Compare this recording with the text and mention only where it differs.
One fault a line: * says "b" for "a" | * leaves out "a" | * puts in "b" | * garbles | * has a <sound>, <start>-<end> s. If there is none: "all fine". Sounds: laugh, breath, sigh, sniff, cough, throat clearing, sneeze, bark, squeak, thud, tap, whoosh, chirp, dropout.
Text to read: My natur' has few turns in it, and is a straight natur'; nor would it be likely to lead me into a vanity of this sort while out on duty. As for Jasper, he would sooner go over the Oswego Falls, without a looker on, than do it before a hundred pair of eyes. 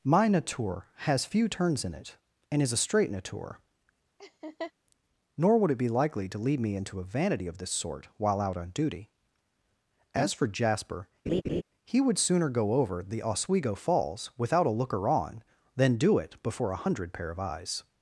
* has a laugh, 4.2-4.7 s
* has a laugh, 11.3-11.6 s